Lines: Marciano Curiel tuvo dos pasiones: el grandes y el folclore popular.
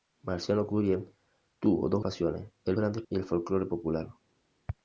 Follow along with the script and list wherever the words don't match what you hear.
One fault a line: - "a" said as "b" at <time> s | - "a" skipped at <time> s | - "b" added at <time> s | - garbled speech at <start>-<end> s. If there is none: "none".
none